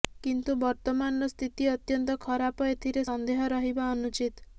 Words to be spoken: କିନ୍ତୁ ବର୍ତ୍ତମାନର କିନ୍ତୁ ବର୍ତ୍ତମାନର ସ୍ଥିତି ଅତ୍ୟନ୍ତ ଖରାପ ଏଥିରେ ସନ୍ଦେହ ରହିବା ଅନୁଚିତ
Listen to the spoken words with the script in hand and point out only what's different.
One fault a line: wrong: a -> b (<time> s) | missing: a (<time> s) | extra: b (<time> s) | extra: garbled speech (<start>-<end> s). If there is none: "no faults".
missing: କିନ୍ତୁ ବର୍ତ୍ତମାନର (1.3 s)